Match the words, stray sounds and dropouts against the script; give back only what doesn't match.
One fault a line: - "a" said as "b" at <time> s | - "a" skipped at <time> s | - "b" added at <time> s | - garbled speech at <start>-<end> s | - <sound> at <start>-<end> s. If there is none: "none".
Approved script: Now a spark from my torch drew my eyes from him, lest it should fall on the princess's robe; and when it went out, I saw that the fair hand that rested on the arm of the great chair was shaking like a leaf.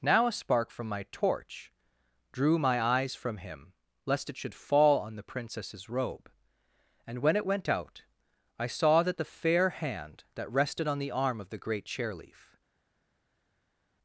- "was shaking like a" skipped at 12.1 s